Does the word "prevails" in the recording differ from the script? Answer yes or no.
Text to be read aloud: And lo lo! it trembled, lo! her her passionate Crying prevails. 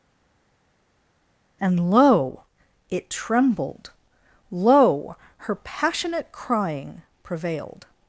yes